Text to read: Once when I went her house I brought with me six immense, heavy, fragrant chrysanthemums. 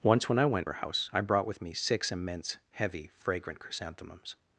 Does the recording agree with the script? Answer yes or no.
yes